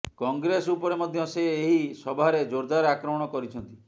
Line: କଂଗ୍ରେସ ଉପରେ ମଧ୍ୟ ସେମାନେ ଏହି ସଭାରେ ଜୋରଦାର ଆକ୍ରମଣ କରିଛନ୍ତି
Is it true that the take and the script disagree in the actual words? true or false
true